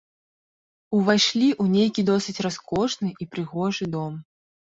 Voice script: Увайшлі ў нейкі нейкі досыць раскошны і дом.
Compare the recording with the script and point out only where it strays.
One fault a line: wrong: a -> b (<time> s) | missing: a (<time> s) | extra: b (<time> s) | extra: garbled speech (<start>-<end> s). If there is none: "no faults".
missing: нейкі (2.0 s)
extra: прыгожы (3.3 s)